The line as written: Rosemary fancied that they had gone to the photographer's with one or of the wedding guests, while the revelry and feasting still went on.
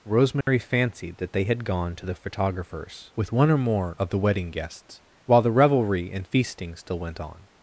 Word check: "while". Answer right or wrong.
right